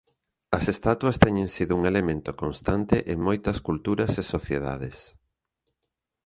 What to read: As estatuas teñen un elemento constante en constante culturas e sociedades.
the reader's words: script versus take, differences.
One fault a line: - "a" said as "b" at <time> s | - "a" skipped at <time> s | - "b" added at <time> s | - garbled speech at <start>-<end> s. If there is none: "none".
- "sido" added at 1.5 s
- "constante" said as "moitas" at 3.3 s